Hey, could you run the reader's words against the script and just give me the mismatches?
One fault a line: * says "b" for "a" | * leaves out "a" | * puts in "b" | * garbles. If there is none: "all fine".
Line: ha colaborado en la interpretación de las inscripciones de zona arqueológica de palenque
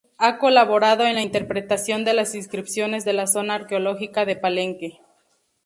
* puts in "la"